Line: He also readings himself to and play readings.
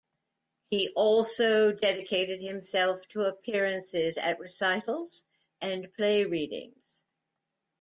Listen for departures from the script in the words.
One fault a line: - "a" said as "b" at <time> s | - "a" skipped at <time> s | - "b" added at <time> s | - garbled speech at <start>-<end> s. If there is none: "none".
- "readings" said as "dedicated" at 1.7 s
- "appearances at recitals" added at 3.2 s